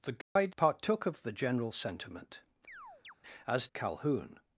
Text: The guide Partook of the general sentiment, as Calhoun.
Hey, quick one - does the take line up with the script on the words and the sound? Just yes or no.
no